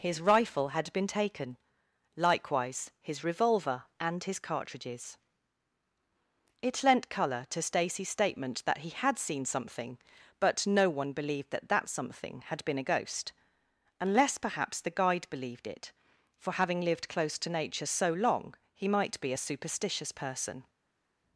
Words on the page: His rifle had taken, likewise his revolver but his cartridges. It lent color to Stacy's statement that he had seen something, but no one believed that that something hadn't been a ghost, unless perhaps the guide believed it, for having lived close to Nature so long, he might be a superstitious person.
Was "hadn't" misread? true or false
true